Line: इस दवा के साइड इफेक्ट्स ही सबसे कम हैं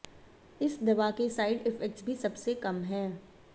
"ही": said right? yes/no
no